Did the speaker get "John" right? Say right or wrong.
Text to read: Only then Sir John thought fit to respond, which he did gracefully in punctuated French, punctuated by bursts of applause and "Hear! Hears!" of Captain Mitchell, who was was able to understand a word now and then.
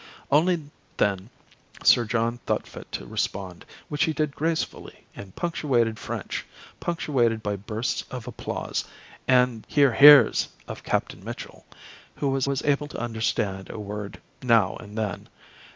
right